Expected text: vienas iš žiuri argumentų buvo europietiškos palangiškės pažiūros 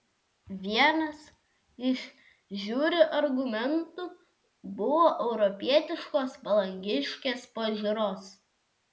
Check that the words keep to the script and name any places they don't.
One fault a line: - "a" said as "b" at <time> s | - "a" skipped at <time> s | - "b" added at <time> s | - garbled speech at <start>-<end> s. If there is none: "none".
none